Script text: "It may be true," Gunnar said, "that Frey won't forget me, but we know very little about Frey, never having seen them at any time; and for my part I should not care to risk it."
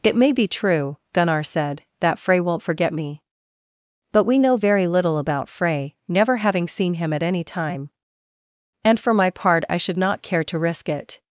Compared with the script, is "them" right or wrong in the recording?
wrong